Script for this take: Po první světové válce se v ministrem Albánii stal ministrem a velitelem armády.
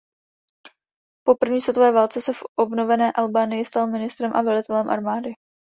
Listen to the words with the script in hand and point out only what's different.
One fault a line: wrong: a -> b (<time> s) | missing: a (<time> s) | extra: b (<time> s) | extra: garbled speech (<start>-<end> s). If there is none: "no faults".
wrong: ministrem -> obnovené (2.6 s)